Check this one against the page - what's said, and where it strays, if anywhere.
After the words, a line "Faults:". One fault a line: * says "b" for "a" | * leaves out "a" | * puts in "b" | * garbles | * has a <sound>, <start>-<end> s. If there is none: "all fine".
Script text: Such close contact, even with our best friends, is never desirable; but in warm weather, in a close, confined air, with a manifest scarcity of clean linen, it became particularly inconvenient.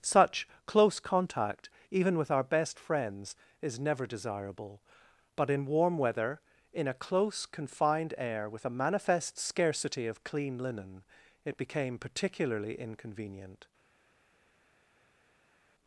Such close contact, even with our best friends, is never desirable; but in warm weather, in a close, confined air, with a manifest scarcity of clean linen, it became particularly inconvenient.
Faults:
all fine